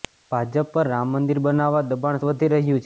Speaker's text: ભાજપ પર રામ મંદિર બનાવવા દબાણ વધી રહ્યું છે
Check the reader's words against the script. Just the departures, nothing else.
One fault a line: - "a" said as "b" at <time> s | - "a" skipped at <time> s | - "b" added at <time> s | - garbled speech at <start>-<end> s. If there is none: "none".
none